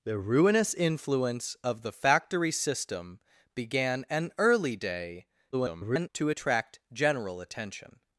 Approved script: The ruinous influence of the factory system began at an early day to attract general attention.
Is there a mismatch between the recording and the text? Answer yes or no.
yes